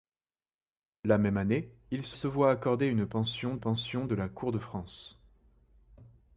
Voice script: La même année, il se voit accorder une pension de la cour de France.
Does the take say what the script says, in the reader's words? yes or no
no